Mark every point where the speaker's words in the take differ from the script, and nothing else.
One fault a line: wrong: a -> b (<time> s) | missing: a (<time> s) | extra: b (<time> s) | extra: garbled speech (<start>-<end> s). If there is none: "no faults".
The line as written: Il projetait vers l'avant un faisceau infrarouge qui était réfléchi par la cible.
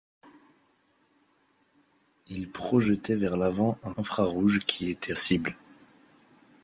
missing: faisceau (3.9 s)
missing: réfléchi par la (5.1 s)